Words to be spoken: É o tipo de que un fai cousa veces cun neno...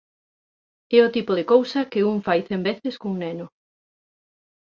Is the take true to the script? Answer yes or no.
no